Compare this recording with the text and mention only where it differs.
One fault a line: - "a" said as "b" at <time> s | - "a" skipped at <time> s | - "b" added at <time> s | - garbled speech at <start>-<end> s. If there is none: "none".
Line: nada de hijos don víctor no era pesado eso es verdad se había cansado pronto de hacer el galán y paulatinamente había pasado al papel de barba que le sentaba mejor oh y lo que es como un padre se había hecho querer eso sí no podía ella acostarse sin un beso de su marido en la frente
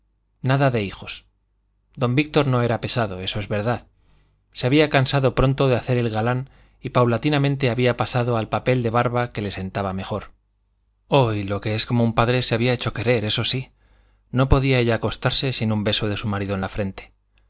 none